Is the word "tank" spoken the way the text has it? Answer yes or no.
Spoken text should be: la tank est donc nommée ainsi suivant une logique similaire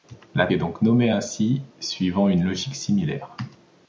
no